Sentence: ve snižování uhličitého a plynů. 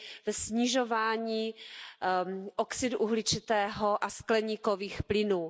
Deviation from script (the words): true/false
true